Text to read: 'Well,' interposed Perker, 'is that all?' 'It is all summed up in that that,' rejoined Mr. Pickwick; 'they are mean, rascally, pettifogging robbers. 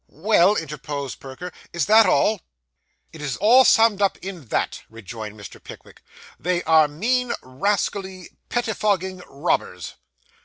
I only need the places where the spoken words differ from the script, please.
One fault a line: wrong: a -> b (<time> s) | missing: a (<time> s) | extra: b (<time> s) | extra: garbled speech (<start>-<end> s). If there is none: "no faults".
missing: that (4.8 s)